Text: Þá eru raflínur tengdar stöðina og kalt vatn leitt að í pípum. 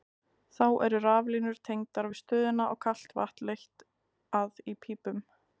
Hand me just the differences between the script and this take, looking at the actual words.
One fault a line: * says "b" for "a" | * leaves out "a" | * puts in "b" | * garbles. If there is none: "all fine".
* puts in "við"